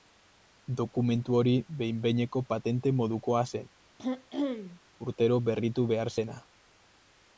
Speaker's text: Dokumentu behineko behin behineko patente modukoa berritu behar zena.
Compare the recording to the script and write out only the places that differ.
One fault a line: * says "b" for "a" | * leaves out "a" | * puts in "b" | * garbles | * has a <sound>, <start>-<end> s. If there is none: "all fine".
* says "hori" for "behineko"
* puts in "zen urtero"
* has a throat clearing, 4.0-4.8 s